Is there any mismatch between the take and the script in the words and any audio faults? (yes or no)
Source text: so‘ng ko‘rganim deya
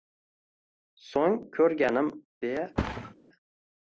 yes